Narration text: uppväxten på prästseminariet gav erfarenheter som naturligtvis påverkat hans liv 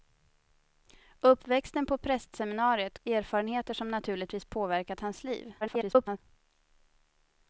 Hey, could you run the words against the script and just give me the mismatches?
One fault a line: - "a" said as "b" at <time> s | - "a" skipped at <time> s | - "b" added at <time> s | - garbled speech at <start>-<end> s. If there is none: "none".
- "gav" skipped at 3.0 s
- garbled speech at 5.6-6.2 s